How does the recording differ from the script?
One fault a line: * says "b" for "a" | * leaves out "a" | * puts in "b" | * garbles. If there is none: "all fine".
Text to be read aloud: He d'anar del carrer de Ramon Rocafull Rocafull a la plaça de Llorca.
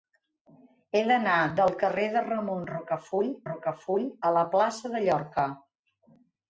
all fine